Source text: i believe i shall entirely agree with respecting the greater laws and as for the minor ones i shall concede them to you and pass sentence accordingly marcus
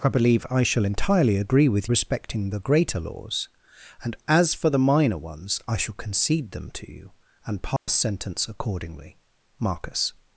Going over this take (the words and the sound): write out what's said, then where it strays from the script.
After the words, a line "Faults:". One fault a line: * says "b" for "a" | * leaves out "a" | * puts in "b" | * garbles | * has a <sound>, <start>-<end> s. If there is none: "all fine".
i believe i shall entirely agree with respecting the greater laws and as for the minor ones i shall concede them to you and pass sentence accordingly marcus
Faults:
* has a dropout, 7.8-7.9 s